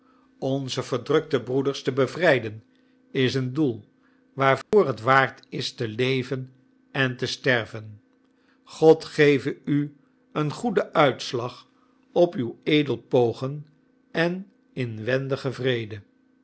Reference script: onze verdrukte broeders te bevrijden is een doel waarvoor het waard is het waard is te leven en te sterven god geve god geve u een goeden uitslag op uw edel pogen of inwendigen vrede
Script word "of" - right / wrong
wrong